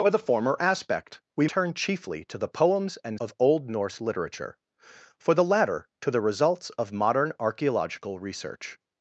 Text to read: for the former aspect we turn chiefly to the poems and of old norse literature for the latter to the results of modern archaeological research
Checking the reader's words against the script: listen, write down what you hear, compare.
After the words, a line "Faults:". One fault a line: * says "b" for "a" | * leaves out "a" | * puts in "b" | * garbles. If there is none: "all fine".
for the former aspect we turn chiefly to the poems and of old norse literature for the latter to the results of modern archaeological research
Faults:
all fine